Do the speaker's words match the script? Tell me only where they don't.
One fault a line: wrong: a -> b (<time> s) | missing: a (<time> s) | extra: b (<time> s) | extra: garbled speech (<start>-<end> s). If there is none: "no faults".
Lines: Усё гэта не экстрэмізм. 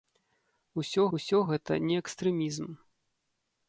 extra: усё (1.2 s)